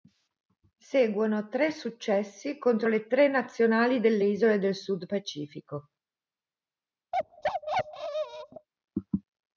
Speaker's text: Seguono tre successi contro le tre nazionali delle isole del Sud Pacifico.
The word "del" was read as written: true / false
true